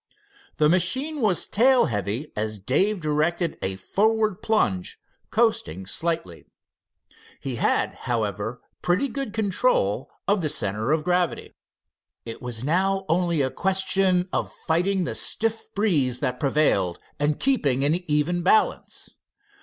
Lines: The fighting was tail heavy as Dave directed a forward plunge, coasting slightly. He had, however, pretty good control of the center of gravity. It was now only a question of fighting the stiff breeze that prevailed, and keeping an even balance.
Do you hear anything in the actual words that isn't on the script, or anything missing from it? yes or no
yes